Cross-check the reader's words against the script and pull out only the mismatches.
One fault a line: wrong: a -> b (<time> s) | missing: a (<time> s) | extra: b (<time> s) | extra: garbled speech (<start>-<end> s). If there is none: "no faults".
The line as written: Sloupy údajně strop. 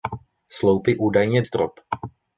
no faults